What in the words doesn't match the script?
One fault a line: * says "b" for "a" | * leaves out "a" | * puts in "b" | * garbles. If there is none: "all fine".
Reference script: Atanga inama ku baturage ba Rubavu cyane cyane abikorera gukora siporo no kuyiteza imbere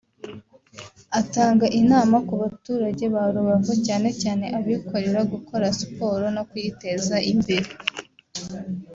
all fine